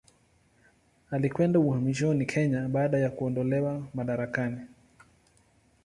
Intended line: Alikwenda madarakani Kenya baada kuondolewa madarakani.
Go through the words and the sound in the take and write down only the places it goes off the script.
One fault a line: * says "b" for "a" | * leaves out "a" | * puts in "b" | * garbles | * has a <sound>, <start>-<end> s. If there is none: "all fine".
* says "uhamishoni" for "madarakani"
* puts in "ya"